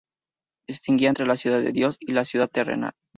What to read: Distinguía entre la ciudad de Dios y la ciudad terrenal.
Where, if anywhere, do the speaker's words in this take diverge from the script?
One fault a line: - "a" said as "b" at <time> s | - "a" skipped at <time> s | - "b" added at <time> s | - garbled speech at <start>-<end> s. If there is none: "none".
none